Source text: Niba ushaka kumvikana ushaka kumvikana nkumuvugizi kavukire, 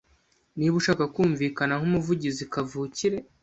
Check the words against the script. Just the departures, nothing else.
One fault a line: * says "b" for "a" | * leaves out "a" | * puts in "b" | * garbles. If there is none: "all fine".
* leaves out "ushaka kumvikana"